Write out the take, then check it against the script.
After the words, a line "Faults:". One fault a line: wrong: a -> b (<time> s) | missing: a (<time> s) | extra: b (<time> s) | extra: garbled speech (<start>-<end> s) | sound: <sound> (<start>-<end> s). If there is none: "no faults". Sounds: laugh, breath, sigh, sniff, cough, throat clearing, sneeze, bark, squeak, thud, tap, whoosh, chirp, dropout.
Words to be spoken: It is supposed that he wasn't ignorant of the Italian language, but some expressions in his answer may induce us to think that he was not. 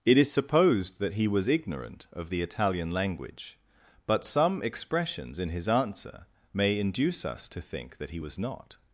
It is supposed that he was ignorant of the Italian language, but some expressions in his answer may induce us to think that he was not.
Faults:
wrong: wasn't -> was (1.3 s)